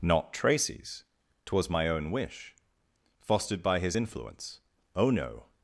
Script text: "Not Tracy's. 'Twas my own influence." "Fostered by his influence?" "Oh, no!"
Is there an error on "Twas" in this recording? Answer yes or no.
no